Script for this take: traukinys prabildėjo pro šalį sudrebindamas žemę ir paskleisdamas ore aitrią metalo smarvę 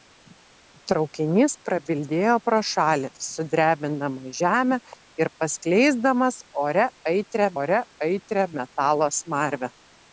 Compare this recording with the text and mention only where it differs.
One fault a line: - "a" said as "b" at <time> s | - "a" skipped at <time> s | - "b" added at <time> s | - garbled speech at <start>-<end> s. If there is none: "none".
- "ore aitrią" added at 7.6 s